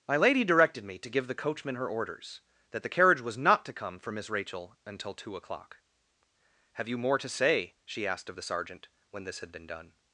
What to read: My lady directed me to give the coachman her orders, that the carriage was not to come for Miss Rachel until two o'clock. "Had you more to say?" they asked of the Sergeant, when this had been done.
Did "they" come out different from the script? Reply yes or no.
yes